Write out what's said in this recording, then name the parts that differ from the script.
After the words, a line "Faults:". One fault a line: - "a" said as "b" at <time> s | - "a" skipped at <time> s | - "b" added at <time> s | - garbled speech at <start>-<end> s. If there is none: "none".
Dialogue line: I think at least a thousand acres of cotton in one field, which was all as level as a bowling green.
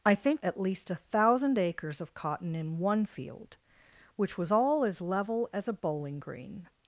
I think at least a thousand acres of cotton in one field, which was all as level as a bowling green.
Faults:
none